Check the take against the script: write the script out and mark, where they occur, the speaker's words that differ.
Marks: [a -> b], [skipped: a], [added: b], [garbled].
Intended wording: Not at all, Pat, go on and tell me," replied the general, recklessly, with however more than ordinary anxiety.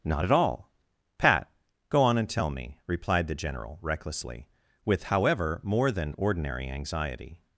Not at all, Pat, go on and tell me," replied the general, recklessly, with however more than ordinary anxiety.